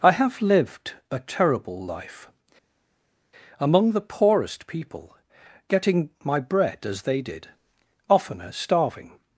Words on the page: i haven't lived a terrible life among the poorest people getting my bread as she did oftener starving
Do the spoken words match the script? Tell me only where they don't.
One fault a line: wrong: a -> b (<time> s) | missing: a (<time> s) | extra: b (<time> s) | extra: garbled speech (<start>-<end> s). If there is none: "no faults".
wrong: haven't -> have (0.1 s)
wrong: she -> they (7.0 s)